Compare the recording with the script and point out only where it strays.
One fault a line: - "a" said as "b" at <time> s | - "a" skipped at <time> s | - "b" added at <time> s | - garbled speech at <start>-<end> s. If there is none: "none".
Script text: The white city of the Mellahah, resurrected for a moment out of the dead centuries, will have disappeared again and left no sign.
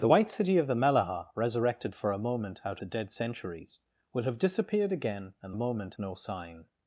- "of" skipped at 2.8 s
- "left" said as "moment" at 5.5 s